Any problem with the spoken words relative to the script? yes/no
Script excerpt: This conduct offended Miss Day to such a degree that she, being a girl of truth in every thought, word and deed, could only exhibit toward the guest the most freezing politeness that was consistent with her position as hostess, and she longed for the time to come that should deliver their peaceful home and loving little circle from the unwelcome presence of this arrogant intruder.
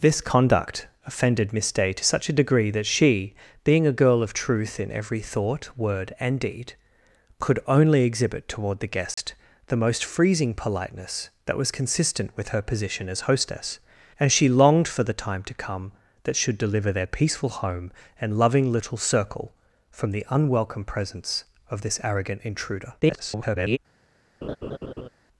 yes